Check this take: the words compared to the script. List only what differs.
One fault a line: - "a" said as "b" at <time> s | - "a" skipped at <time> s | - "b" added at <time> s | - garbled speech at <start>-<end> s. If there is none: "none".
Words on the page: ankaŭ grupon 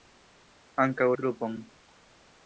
none